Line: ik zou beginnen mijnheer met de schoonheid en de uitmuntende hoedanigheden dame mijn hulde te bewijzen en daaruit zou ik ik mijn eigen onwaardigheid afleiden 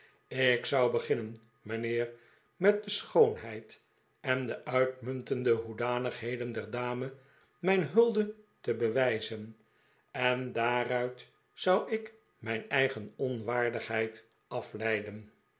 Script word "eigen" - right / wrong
right